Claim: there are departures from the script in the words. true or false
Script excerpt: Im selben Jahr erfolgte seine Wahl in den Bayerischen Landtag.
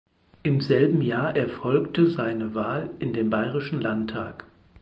false